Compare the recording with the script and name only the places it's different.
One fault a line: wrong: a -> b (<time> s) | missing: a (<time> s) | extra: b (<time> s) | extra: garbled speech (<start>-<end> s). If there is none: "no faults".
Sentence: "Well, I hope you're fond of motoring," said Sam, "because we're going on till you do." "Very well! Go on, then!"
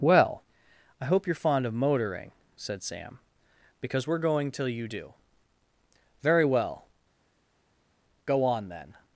missing: on (4.5 s)